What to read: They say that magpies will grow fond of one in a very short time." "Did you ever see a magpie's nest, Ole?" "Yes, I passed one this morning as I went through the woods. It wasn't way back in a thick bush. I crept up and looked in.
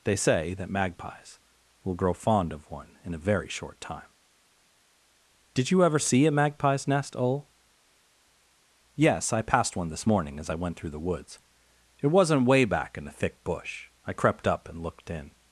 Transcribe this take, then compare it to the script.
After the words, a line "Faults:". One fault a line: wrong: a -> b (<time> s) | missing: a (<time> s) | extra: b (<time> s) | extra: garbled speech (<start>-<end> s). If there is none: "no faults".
They say that magpies will grow fond of one in a very short time." "Did you ever see a magpie's nest, Ole?" "Yes, I passed one this morning as I went through the woods. It wasn't way back in a thick bush. I crept up and looked in.
Faults:
no faults